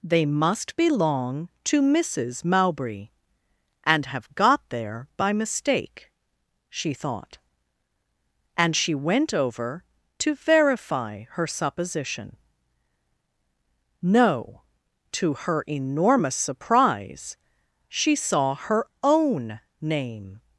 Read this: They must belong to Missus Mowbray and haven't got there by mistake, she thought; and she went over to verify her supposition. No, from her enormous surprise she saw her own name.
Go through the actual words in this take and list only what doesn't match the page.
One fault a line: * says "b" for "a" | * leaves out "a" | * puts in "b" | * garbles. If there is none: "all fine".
* says "have" for "haven't"
* says "to" for "from"